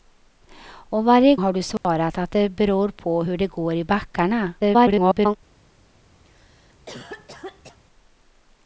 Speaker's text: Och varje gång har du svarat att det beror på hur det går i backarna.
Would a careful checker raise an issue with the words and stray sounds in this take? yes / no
yes